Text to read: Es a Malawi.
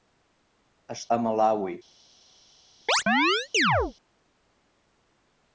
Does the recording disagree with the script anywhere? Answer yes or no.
no